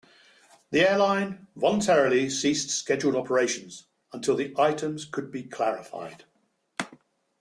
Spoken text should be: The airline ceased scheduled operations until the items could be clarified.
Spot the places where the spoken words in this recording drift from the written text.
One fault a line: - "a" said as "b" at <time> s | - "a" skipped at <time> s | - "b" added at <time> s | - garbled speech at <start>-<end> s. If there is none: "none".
- "voluntarily" added at 1.6 s